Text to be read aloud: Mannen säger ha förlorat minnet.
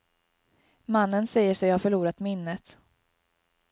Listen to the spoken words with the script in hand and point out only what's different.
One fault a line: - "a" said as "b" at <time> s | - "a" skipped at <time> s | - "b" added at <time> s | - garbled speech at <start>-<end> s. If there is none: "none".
- "sig" added at 1.5 s